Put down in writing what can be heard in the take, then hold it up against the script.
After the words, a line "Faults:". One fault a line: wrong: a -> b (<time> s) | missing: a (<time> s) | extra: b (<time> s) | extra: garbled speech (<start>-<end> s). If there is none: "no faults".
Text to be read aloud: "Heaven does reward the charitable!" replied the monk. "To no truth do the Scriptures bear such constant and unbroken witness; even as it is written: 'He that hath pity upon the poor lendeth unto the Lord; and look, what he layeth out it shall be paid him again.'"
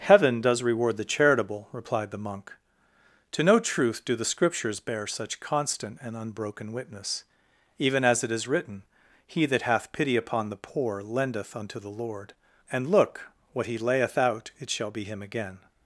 "Heaven does reward the charitable!" replied the monk. "To no truth do the Scriptures bear such constant and unbroken witness; even as it is written: 'He that hath pity upon the poor lendeth unto the Lord; and look, what he layeth out it shall be him again.'"
Faults:
missing: paid (15.0 s)